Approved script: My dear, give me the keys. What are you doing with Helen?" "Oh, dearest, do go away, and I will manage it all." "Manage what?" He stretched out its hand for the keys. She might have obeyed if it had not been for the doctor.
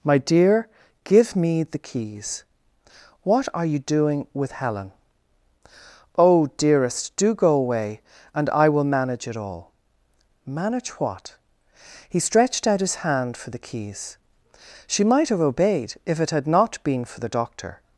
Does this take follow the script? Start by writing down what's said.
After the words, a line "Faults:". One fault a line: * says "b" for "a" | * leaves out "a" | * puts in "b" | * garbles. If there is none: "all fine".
My dear, give me the keys. What are you doing with Helen?" "Oh, dearest, do go away, and I will manage it all." "Manage what?" He stretched out his hand for the keys. She might have obeyed if it had not been for the doctor.
Faults:
* says "his" for "its"